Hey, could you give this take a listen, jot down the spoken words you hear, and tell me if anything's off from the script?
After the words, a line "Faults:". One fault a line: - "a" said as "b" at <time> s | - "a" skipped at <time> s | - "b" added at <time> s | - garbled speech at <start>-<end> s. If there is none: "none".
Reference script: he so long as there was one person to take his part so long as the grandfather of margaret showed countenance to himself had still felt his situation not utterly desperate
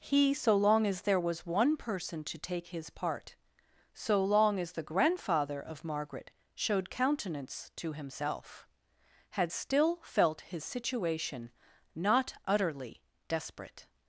he so long as there was one person to take his part so long as the grandfather of margaret showed countenance to himself had still felt his situation not utterly desperate
Faults:
none